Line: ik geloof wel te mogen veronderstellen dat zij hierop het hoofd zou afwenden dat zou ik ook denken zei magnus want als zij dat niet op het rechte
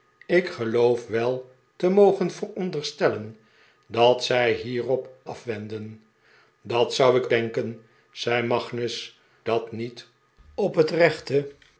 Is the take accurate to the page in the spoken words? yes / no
no